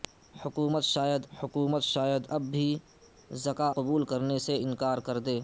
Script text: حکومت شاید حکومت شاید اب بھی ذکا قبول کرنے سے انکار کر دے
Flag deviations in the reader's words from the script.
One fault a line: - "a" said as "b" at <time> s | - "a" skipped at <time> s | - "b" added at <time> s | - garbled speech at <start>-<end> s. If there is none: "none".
none